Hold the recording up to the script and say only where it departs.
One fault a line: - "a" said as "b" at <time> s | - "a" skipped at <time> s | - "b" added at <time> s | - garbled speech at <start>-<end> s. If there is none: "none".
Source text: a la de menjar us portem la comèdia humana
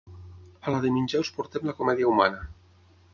none